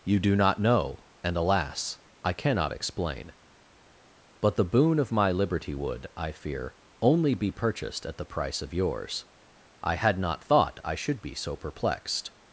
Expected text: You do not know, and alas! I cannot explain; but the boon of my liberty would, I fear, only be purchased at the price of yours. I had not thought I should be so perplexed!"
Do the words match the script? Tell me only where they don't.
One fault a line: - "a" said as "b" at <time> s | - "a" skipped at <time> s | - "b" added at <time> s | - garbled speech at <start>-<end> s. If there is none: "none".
none